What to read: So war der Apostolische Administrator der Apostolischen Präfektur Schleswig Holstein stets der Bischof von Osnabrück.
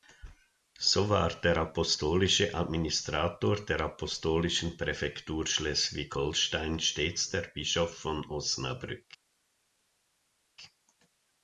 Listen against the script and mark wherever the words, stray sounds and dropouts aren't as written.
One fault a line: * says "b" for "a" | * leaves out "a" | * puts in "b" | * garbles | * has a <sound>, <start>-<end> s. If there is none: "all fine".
all fine